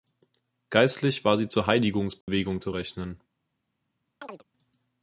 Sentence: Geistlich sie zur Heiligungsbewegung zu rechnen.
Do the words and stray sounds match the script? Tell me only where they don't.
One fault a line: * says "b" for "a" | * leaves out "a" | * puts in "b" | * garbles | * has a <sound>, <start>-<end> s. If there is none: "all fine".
* puts in "war"
* has a dropout, 2.2-2.3 s
* has a chirp, 4.2-4.4 s